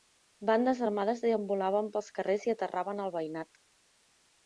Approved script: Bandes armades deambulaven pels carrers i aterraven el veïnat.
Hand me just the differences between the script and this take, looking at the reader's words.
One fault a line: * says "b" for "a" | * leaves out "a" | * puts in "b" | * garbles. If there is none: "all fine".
all fine